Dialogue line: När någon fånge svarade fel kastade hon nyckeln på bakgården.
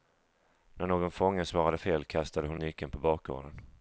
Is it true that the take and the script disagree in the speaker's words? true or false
false